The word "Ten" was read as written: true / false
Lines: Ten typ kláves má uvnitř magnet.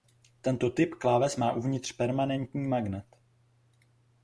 false